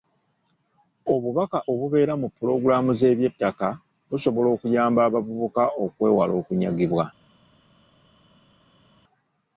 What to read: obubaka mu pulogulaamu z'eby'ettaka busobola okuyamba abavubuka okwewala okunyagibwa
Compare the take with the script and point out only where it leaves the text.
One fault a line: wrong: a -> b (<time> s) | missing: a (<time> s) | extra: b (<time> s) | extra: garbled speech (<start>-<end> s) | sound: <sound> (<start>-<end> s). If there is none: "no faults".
extra: obubeera (1.7 s)